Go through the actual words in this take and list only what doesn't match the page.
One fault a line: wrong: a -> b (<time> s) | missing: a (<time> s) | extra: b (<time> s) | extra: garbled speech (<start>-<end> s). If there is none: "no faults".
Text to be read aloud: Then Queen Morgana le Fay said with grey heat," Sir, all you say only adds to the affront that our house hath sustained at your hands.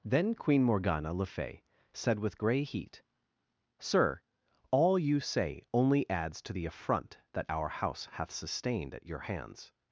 no faults